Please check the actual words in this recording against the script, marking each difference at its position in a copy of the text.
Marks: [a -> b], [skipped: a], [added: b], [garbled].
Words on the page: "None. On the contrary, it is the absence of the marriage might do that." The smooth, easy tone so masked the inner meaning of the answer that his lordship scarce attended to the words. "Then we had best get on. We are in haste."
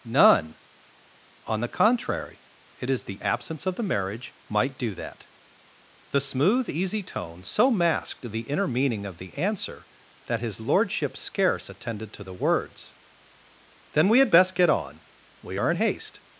"None. On the contrary, it is the absence of the marriage might do that." The smooth, easy tone so masked the inner meaning of the answer that his lordship scarce attended to the words. "Then we had best get on. We are in haste."